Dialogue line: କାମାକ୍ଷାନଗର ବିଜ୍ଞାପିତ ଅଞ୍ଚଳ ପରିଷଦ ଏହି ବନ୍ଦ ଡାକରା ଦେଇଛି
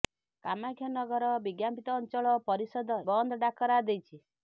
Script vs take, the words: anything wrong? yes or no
yes